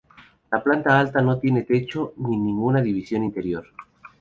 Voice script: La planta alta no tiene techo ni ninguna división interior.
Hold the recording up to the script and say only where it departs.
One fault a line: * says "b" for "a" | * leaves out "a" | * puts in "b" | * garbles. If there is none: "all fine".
all fine